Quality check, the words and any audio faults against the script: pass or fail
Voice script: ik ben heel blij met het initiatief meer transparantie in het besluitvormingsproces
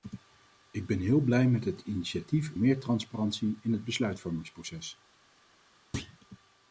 fail